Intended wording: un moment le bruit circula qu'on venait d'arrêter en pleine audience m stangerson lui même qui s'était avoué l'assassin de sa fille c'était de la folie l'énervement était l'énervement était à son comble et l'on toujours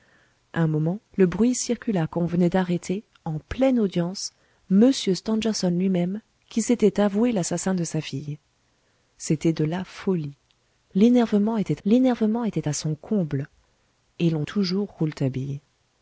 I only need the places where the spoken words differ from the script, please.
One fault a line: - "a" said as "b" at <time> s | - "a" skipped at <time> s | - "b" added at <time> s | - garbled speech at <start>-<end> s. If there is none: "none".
none